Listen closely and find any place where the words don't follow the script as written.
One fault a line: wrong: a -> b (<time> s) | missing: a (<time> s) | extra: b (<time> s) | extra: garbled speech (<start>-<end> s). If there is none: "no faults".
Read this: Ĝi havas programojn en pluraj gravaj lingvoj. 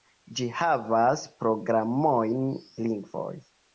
missing: en pluraj gravaj (2.5 s)